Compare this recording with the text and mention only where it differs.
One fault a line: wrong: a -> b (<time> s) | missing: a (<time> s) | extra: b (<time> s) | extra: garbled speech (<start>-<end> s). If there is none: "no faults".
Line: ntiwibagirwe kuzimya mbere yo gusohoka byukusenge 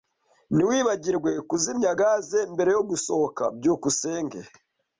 extra: gaze (2.0 s)